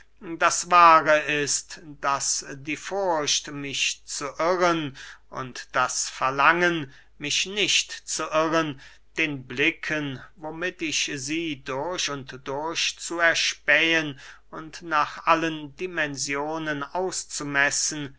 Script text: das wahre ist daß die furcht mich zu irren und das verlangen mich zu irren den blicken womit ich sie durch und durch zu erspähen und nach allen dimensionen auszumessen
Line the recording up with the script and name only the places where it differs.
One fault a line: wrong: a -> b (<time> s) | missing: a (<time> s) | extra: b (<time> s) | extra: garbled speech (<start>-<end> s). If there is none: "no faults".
extra: nicht (7.5 s)